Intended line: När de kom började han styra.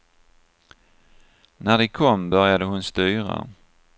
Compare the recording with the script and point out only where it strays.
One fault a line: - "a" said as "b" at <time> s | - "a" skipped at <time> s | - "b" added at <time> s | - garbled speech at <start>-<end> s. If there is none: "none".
- "han" said as "hon" at 2.7 s